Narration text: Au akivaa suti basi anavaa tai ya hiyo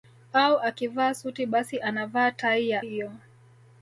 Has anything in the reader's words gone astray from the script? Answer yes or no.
no